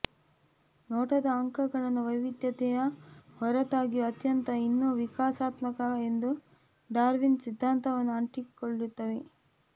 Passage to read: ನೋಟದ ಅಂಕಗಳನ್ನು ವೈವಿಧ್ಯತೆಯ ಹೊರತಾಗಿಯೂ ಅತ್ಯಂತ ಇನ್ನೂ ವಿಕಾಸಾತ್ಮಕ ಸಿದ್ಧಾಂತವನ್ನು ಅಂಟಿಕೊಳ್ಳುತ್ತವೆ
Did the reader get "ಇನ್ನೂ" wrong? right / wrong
right